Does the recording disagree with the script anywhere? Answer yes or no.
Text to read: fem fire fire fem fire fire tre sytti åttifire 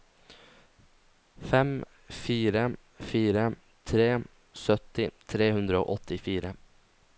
yes